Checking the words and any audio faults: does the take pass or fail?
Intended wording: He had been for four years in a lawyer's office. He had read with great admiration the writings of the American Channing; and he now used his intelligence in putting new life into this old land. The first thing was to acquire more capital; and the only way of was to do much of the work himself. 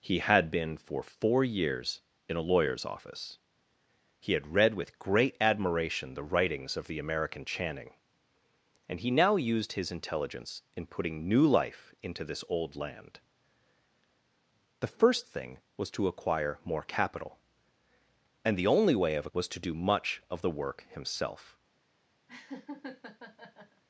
fail